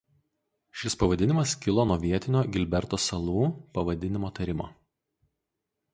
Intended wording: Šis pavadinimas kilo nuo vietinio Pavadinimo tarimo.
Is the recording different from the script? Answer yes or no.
yes